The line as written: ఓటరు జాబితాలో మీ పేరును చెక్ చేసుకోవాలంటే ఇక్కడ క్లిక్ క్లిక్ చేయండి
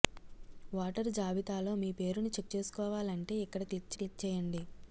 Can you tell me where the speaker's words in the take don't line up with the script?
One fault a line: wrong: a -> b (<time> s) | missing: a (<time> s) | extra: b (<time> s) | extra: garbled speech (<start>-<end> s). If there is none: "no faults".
no faults